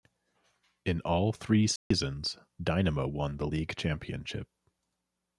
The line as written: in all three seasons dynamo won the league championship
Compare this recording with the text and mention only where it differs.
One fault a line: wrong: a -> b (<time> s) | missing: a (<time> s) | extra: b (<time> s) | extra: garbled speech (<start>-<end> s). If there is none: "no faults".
no faults